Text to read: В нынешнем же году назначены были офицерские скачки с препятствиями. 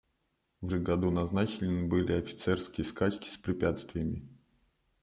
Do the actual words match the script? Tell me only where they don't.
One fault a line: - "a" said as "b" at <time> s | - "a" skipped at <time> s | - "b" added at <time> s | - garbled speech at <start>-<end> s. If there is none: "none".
- "нынешнем" skipped at 0.7 s